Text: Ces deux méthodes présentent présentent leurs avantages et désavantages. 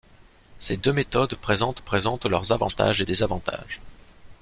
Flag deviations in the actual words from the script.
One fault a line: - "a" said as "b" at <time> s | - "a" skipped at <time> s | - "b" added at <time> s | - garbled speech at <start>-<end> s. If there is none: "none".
none